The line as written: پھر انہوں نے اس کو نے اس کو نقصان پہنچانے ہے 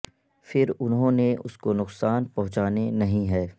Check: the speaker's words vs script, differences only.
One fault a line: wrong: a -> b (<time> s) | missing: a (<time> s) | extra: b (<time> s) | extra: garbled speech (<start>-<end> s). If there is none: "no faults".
missing: نے اس کو (1.7 s)
extra: نہیں (2.9 s)